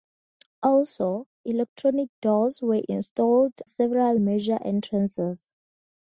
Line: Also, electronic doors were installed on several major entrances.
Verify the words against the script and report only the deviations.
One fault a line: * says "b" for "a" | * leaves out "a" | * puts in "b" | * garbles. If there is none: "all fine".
* leaves out "on"